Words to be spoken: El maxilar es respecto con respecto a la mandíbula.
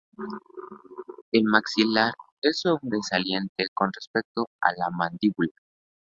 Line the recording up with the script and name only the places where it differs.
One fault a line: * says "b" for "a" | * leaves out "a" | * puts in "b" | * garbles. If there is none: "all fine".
* says "sobresaliente" for "respecto"